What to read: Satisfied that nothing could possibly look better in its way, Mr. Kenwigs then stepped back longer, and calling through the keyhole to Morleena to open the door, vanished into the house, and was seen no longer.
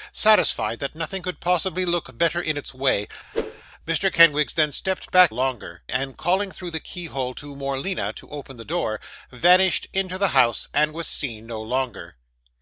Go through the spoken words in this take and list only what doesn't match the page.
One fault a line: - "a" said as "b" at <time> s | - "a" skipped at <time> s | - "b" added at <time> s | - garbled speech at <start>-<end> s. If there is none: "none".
none